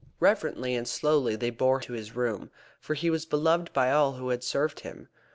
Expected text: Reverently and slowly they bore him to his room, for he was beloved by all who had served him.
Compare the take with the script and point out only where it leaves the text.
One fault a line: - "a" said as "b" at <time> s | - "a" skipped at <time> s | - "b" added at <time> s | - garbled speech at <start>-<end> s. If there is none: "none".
- "him" skipped at 1.8 s